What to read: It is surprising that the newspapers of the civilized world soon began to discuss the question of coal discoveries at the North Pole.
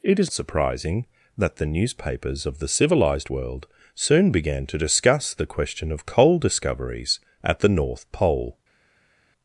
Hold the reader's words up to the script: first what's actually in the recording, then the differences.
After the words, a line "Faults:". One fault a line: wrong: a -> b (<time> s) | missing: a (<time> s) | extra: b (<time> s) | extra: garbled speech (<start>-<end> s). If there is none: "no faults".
It is surprising that the newspapers of the civilized world soon began to discuss the question of coal discoveries at the North Pole.
Faults:
no faults